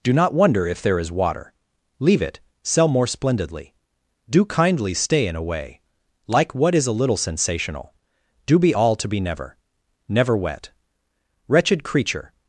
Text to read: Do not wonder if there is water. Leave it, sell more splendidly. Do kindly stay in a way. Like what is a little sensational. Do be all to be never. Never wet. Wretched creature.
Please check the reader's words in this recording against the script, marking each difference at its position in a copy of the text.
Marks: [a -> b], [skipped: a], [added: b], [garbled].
Do not wonder if there is water. Leave it, sell more splendidly. Do kindly stay in a way. Like what is a little sensational. Do be all to be never. Never wet. Wretched creature.